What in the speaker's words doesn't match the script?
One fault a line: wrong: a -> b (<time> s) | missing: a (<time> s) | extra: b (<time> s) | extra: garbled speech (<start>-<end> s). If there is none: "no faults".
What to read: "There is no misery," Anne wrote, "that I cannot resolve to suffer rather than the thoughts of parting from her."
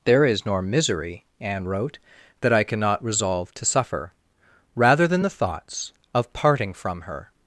wrong: no -> nor (0.5 s)